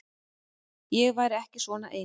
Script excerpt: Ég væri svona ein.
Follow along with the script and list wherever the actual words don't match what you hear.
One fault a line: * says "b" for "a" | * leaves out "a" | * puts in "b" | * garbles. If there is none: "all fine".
* puts in "ekki"